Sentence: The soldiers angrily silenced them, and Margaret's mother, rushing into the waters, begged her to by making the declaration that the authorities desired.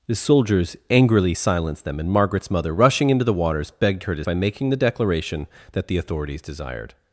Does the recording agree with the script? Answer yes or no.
yes